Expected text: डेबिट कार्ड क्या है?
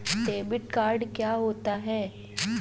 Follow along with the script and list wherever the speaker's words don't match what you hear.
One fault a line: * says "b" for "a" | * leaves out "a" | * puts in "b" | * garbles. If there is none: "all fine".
* puts in "होता"